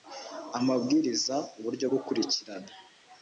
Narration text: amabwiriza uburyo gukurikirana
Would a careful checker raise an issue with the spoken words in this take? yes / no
no